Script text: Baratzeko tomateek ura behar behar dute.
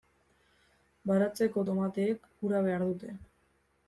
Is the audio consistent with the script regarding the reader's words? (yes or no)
no